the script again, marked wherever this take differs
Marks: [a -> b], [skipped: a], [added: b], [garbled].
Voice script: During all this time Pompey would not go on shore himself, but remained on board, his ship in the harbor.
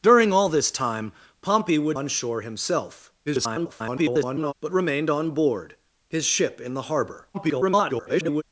During all this time Pompey would [skipped: not go] on shore himself, [garbled] but remained on board, his ship in the harbor. [garbled]